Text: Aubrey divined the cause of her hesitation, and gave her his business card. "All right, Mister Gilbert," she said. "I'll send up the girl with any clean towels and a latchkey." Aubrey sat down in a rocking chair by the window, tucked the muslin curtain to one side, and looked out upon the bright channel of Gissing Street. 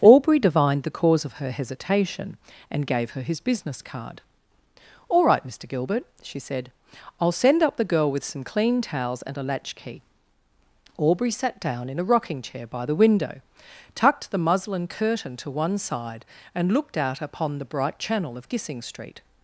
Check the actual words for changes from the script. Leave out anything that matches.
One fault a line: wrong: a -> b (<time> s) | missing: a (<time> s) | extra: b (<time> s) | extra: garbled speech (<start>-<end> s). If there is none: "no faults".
wrong: any -> some (8.2 s)